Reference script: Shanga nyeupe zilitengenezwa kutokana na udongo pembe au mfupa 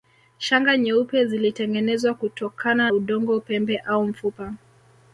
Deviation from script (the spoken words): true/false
true